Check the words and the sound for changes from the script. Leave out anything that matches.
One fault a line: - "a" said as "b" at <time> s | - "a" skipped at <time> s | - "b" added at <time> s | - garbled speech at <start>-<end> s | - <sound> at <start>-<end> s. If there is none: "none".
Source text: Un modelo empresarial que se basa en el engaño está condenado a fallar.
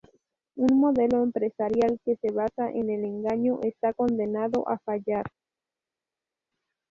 none